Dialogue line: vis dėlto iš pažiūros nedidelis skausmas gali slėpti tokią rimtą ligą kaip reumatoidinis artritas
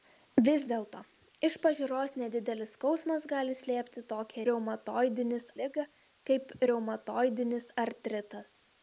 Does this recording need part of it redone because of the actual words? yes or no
yes